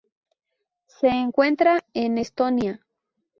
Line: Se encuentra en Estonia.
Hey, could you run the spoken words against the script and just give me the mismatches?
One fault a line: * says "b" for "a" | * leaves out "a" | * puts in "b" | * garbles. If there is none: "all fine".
all fine